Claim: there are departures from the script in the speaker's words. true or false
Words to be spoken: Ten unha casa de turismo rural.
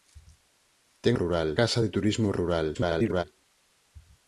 true